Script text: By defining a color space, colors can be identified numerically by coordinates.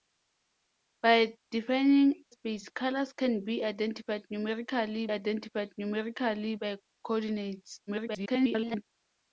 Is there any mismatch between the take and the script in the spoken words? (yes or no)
yes